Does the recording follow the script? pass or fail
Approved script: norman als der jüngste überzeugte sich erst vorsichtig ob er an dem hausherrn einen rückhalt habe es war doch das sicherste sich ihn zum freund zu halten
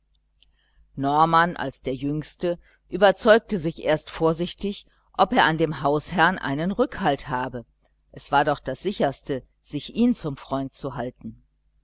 pass